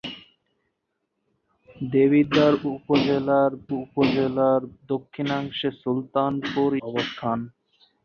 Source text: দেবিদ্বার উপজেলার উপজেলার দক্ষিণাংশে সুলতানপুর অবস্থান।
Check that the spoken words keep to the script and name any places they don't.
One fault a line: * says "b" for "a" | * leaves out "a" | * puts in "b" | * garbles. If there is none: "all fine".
all fine